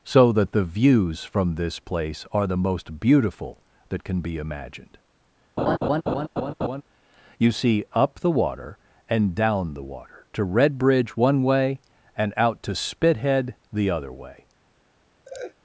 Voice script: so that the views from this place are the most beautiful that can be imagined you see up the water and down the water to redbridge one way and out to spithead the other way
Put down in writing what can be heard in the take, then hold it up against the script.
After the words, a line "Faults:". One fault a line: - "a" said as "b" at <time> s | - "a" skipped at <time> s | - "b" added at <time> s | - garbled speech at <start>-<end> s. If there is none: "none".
so that the views from this place are the most beautiful that can be imagined you see up the water and down the water to redbridge one way and out to spithead the other way
Faults:
none